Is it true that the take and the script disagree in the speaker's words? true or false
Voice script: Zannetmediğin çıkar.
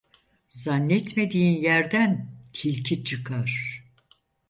true